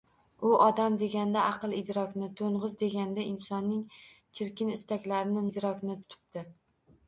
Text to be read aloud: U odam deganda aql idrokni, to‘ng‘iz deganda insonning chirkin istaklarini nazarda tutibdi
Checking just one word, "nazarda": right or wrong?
wrong